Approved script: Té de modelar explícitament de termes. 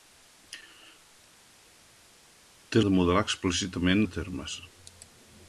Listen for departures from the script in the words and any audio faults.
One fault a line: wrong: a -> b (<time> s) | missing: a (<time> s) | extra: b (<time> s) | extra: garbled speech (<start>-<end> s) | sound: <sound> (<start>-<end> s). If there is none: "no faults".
no faults